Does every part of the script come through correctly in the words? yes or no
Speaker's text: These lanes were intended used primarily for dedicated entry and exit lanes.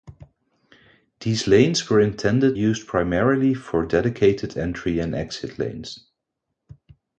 yes